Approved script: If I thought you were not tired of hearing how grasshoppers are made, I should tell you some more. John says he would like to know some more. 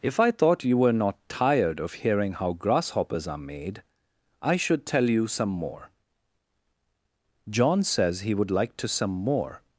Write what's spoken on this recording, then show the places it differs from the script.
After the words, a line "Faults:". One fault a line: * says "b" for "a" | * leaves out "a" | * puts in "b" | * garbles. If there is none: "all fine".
If I thought you were not tired of hearing how grasshoppers are made, I should tell you some more. John says he would like to some more.
Faults:
* leaves out "know"